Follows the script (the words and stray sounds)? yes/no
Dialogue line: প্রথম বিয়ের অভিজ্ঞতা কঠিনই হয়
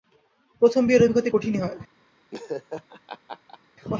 no